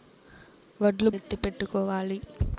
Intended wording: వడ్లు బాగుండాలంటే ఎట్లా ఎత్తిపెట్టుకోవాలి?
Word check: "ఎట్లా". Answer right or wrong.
wrong